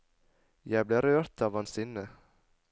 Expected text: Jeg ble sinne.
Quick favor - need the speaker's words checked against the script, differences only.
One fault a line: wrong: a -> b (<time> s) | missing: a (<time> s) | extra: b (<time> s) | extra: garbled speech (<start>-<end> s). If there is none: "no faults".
extra: rørt av hans (1.1 s)